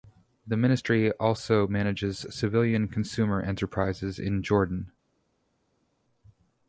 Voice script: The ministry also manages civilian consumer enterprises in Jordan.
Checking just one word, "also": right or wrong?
right